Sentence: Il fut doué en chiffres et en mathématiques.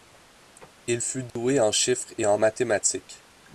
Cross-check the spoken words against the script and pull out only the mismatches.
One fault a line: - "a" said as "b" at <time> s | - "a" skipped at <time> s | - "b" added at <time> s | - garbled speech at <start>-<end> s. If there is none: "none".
none